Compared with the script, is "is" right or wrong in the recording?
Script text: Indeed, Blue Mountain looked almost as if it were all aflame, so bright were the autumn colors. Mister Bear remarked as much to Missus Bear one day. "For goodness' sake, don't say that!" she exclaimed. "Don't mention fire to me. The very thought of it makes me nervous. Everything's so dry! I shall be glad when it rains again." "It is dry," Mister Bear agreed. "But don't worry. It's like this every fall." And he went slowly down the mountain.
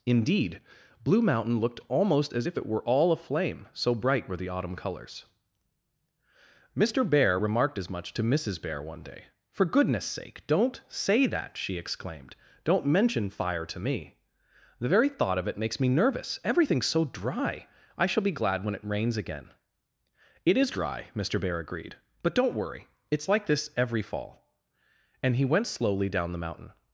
right